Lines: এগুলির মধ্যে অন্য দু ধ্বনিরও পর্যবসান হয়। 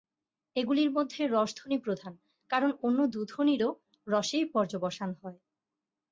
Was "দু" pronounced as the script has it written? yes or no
yes